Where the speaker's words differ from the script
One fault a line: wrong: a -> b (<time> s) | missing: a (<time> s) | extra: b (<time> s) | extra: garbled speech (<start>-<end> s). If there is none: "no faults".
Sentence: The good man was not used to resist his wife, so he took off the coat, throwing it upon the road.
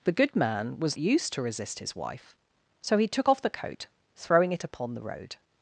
missing: not (1.0 s)